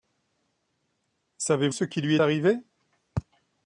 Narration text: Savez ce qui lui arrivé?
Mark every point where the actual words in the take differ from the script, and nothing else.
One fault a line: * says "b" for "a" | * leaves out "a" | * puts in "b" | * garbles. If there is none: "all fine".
all fine